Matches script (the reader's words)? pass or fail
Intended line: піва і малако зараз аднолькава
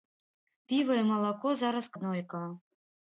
pass